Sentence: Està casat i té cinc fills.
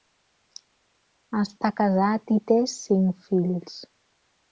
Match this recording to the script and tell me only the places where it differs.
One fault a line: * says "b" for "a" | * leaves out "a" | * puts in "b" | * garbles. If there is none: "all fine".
all fine